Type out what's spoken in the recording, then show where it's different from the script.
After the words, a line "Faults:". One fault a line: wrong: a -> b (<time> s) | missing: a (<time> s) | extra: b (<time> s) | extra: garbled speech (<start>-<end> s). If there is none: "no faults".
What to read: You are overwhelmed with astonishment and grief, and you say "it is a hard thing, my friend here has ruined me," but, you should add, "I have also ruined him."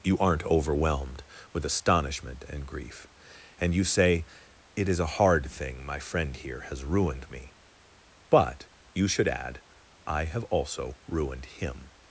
You aren't overwhelmed with astonishment and grief, and you say "it is a hard thing, my friend here has ruined me," but, you should add, "I have also ruined him."
Faults:
wrong: are -> aren't (0.2 s)